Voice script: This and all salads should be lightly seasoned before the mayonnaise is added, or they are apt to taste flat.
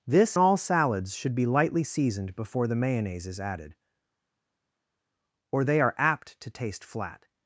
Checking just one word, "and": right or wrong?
wrong